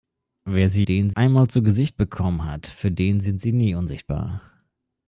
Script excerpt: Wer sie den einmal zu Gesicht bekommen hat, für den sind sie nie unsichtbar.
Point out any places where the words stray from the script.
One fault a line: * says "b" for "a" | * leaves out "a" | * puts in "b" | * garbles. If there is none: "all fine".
all fine